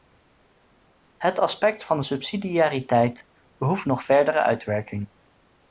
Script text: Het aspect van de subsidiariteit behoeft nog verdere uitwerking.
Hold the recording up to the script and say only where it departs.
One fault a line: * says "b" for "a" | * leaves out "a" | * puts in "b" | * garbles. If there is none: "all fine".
all fine